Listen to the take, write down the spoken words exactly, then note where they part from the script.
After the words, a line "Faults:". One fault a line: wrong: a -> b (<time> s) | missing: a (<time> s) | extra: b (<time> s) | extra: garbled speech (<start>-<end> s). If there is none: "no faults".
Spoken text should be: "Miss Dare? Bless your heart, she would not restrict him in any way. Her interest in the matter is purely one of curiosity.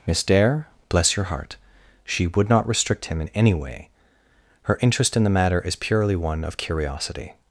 "Miss Dare? Bless your heart, she would not restrict him in any way. Her interest in the matter is purely one of curiosity.
Faults:
no faults